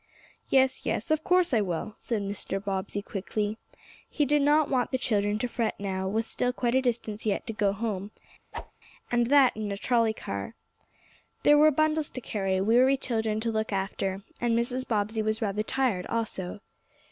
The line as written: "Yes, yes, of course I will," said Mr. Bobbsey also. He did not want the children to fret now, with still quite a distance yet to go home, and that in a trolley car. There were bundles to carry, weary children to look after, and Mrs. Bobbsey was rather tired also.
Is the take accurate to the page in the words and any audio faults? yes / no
no